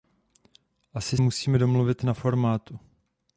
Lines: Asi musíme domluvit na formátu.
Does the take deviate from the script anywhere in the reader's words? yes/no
no